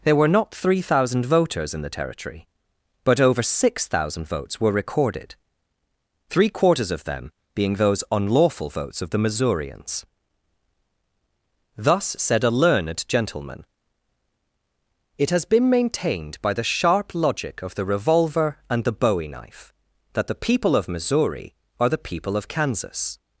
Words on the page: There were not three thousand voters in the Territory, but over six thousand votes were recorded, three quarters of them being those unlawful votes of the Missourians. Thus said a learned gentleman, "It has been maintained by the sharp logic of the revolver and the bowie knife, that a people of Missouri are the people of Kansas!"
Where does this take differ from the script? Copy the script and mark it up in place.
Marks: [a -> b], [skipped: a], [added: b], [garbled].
There were not three thousand voters in the Territory, but over six thousand votes were recorded, three quarters of them being those unlawful votes of the Missourians. Thus said a learned gentleman, "It has been maintained by the sharp logic of the revolver and the bowie knife, that [a -> the] people of Missouri are the people of Kansas!"